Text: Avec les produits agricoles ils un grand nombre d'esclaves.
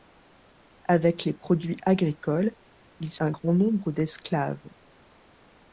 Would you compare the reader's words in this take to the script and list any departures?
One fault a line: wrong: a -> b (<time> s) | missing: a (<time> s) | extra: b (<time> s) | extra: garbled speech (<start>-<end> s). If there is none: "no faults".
no faults